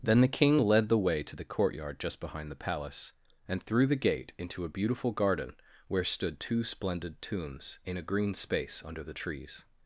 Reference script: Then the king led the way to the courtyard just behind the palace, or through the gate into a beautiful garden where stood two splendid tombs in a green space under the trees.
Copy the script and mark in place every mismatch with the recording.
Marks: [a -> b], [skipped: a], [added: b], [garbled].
Then the king led the way to the courtyard just behind the palace, [or -> and] through the gate into a beautiful garden where stood two splendid tombs in a green space under the trees.